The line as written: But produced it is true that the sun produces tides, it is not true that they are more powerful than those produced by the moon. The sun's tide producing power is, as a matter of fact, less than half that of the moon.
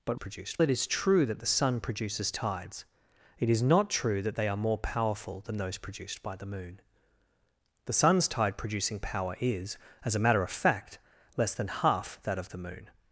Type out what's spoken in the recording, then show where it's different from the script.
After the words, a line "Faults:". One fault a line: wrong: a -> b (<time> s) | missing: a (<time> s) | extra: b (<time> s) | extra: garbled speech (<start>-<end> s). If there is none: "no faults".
But produced it is true that the sun produces tides, it is not true that they are more powerful than those produced by the moon. The sun's tide producing power is, as a matter of fact, less than half that of the moon.
Faults:
no faults